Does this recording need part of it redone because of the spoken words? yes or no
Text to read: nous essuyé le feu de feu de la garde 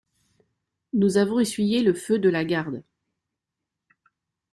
yes